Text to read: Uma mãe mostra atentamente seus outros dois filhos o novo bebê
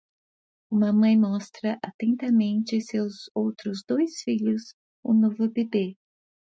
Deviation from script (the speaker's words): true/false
false